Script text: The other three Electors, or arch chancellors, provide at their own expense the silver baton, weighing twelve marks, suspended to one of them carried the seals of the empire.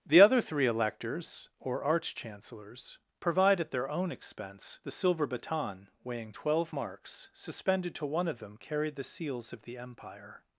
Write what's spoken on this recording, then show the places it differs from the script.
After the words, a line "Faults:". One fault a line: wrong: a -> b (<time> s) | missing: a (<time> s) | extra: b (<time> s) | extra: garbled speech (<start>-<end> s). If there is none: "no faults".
The other three Electors, or arch chancellors, provide at their own expense the silver baton, weighing twelve marks, suspended to one of them carried the seals of the empire.
Faults:
no faults